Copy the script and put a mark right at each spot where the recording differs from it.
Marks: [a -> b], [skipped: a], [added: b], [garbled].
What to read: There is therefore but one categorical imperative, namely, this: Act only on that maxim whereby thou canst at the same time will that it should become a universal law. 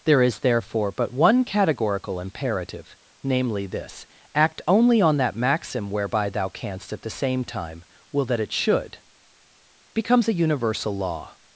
There is therefore but one categorical imperative, namely, this: Act only on that maxim whereby thou canst at the same time will that it should [become -> becomes] a universal law.